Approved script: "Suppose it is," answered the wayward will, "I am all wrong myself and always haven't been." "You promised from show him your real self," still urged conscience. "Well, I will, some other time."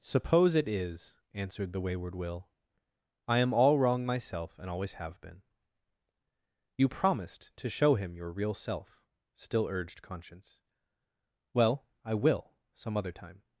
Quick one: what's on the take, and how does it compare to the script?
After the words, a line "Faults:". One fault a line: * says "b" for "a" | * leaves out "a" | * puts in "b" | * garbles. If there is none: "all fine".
"Suppose it is," answered the wayward will, "I am all wrong myself and always have been." "You promised to show him your real self," still urged conscience. "Well, I will, some other time."
Faults:
* says "have" for "haven't"
* says "to" for "from"